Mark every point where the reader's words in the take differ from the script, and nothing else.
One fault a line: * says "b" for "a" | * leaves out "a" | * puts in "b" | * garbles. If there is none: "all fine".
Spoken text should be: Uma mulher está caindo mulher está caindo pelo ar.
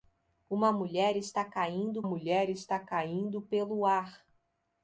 all fine